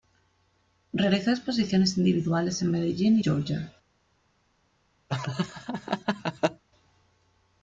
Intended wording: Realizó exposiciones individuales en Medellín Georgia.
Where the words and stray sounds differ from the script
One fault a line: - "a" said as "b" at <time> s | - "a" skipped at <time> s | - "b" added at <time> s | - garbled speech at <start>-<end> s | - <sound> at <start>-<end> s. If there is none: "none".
- laugh at 5.1-6.6 s